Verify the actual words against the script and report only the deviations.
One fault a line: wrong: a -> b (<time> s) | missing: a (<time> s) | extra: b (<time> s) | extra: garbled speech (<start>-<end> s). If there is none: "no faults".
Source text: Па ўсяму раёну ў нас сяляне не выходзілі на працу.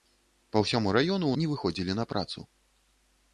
missing: нас сяляне (1.4 s)